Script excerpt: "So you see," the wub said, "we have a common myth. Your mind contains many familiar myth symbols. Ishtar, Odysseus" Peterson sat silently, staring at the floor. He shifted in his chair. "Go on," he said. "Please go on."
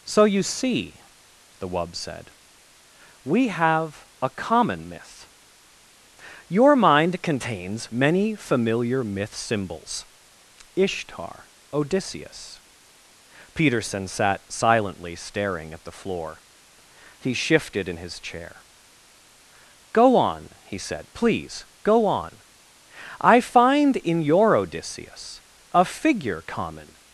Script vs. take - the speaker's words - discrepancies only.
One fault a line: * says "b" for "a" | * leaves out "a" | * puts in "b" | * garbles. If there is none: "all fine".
* puts in "I find in your Odysseus a figure common"